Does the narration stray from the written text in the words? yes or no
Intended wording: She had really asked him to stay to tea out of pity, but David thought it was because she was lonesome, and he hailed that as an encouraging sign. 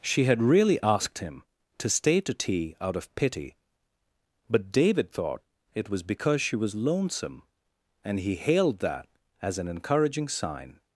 no